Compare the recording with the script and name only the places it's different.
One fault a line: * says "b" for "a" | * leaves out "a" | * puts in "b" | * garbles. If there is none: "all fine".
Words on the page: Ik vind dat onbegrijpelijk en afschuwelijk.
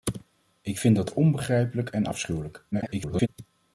* garbles